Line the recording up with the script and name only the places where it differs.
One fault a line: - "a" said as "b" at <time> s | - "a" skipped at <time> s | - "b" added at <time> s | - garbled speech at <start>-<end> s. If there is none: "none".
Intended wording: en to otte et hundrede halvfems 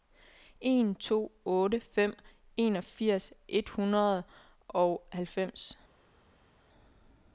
- "fem enogfirs" added at 1.8 s
- "og" added at 4.7 s